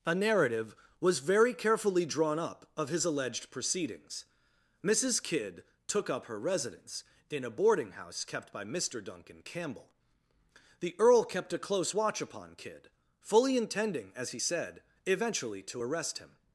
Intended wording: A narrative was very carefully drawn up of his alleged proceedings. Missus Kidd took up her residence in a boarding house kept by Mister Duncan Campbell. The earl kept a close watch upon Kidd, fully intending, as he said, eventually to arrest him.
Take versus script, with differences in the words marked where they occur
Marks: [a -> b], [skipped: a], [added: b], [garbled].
A narrative was very carefully drawn up of his alleged proceedings. Missus Kidd took up her residence in a boarding house kept by Mister Duncan Campbell. The earl kept a close watch upon Kidd, fully intending, as he said, eventually to arrest him.